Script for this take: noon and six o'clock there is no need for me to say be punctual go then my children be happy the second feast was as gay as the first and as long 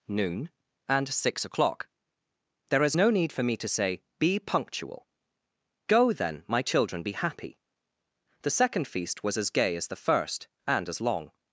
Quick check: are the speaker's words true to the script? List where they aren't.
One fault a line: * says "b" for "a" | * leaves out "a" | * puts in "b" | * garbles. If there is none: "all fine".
all fine